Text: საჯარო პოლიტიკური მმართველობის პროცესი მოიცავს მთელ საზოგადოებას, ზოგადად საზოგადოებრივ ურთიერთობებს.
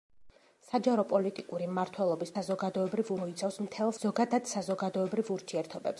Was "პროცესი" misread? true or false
true